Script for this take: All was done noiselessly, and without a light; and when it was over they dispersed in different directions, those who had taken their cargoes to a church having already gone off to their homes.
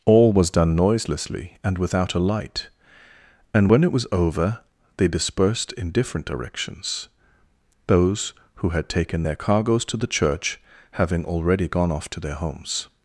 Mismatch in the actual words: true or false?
true